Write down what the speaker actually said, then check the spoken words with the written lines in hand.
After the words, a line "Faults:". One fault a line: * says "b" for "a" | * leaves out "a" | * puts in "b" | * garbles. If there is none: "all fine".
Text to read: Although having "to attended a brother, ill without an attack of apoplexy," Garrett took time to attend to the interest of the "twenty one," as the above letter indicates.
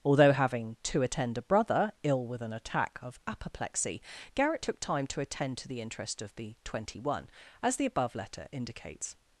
Although having "to attend a brother, ill with an attack of apoplexy," Garrett took time to attend to the interest of the "twenty one," as the above letter indicates.
Faults:
* says "attend" for "attended"
* says "with" for "without"